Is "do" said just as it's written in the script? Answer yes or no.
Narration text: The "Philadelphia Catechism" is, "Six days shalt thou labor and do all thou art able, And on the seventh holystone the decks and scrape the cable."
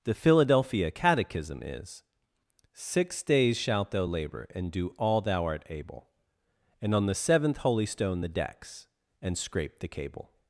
yes